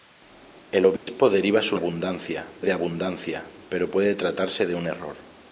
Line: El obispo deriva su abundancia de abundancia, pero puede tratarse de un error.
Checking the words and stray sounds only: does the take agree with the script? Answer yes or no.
no